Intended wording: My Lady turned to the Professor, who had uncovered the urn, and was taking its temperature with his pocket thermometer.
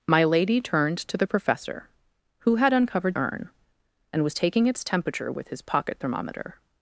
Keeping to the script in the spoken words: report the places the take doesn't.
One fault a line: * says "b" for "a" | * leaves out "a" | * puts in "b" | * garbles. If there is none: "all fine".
* leaves out "the"